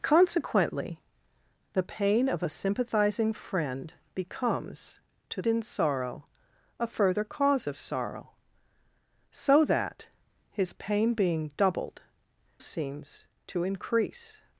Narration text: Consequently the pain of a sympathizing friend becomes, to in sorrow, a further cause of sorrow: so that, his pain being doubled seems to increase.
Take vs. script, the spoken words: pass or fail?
pass